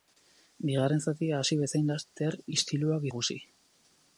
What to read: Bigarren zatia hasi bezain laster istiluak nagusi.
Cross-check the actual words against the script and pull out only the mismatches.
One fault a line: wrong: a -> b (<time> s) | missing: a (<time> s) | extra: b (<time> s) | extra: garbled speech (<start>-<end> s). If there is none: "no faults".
no faults